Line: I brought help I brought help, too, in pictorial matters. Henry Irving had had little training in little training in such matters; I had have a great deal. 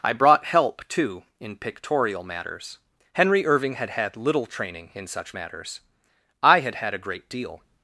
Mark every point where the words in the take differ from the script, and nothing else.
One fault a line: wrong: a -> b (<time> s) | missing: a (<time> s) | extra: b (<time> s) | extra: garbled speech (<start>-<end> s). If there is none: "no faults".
missing: I brought help (0.9 s)
missing: little training in (5.0 s)
wrong: have -> had (6.8 s)